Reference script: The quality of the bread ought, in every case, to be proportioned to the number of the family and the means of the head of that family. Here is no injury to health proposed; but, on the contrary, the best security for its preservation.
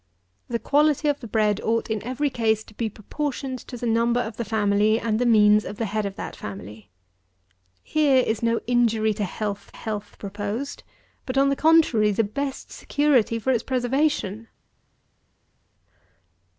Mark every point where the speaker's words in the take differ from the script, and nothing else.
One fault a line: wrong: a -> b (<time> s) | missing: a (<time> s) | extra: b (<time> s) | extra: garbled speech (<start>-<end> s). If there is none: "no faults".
extra: health (9.7 s)